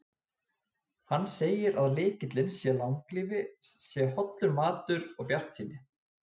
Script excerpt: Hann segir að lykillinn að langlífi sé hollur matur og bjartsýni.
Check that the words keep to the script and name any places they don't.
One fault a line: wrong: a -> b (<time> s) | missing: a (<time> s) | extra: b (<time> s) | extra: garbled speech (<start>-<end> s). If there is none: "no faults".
no faults